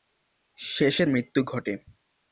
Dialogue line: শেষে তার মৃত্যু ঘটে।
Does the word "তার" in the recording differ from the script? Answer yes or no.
yes